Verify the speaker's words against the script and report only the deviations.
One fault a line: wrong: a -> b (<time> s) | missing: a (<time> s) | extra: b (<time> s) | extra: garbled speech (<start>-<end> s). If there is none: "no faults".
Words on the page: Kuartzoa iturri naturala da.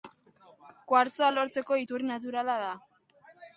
extra: lortzeko (1.3 s)